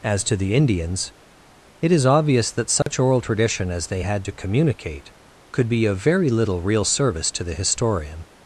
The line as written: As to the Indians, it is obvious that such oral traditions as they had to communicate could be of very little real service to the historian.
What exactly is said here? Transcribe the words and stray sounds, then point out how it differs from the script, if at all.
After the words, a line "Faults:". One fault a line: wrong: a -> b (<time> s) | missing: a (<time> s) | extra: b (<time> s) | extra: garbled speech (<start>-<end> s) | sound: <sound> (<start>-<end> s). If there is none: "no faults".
As to the Indians, it is obvious that such oral tradition as they had to communicate could be of very little real service to the historian.
Faults:
sound: dropout (2.8-2.9 s)
wrong: traditions -> tradition (3.2 s)